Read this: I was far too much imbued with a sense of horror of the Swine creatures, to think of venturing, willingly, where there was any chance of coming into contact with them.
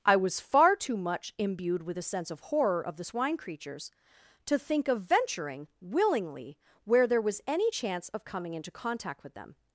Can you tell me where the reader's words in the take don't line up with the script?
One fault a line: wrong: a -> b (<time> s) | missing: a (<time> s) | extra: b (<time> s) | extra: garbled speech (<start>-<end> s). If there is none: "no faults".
no faults